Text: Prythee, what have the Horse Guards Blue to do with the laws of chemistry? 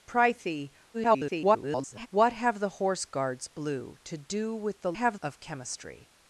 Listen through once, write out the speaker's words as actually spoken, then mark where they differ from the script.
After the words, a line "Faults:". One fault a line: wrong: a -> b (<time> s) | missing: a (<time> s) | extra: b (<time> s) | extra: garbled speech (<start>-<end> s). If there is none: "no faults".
Prythee, [garbled] what have the Horse Guards Blue to do with the have of chemistry?
Faults:
extra: garbled speech (0.9-2.1 s)
wrong: laws -> have (4.9 s)